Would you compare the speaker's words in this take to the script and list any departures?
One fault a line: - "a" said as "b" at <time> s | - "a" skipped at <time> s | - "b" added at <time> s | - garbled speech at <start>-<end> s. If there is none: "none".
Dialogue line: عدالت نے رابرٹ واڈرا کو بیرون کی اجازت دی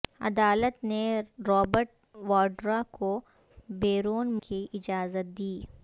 none